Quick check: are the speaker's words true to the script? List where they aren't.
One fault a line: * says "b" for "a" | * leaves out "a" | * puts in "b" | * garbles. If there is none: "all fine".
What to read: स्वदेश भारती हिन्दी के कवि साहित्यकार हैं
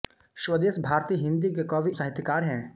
all fine